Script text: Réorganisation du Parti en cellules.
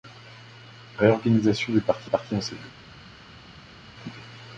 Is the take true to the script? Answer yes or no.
no